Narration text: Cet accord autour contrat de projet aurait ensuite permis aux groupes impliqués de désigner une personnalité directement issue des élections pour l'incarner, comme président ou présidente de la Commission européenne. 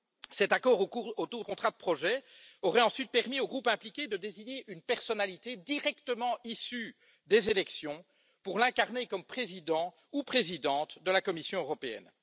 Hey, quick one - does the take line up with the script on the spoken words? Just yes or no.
yes